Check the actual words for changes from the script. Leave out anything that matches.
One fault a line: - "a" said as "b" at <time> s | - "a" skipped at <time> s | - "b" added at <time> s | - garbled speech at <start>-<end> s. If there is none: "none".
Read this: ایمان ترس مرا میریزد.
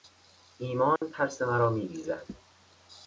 none